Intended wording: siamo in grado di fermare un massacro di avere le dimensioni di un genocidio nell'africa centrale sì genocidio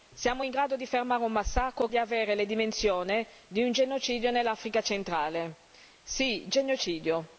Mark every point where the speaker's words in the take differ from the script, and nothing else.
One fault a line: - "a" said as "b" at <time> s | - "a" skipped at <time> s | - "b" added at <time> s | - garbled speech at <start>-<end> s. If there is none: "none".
none